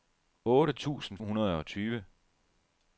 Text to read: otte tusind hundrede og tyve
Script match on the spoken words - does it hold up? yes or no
yes